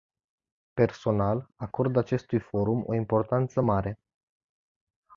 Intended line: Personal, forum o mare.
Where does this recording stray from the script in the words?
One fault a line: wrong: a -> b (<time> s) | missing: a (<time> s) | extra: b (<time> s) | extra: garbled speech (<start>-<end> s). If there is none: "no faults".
extra: acord acestui (1.6 s)
extra: importanță (2.9 s)